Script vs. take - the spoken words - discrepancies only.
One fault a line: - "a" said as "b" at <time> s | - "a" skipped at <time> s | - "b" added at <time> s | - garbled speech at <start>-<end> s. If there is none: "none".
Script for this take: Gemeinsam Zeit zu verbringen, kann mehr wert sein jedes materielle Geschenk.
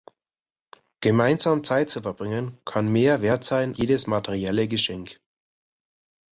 none